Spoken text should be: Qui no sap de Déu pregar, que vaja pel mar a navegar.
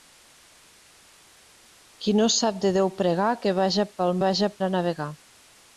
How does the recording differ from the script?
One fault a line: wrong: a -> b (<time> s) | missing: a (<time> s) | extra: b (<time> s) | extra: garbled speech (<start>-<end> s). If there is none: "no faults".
wrong: mar -> vaja (4.3 s)